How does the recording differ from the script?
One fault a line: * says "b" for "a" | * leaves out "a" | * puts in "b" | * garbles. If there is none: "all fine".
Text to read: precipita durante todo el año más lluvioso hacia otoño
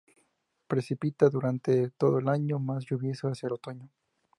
all fine